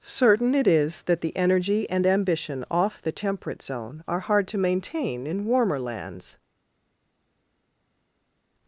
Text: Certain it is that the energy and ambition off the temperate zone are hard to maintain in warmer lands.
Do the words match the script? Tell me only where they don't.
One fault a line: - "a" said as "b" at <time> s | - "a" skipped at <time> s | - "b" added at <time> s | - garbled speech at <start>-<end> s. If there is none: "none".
none